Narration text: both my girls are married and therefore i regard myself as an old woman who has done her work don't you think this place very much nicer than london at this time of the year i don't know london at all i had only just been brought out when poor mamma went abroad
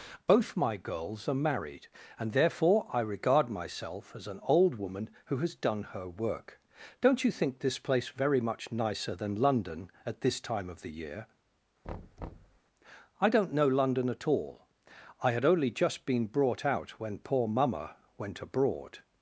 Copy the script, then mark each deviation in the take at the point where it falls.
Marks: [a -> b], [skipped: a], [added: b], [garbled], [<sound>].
both my girls are married and therefore i regard myself as an old woman who has done her work don't you think this place very much nicer than london at this time of the year [thud] i don't know london at all i had only just been brought out when poor mamma went abroad